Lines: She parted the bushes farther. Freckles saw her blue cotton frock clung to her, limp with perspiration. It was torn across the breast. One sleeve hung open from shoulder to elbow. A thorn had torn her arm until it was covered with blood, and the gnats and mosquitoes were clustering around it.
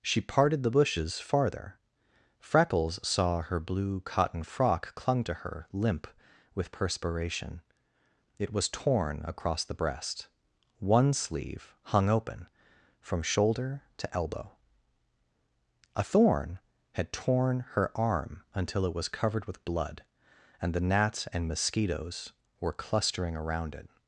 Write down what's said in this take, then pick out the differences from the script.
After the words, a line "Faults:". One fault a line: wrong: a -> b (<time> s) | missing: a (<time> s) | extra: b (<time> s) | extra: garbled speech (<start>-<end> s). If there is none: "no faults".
She parted the bushes farther. Freckles saw her blue cotton frock clung to her, limp with perspiration. It was torn across the breast. One sleeve hung open from shoulder to elbow. A thorn had torn her arm until it was covered with blood, and the gnats and mosquitoes were clustering around it.
Faults:
no faults